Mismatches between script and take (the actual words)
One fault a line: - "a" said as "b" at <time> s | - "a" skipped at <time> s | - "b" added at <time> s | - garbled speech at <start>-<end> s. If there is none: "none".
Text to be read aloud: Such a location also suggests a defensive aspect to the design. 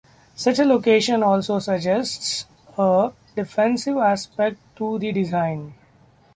none